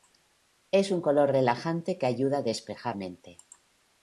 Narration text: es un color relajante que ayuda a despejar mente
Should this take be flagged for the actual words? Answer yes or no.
no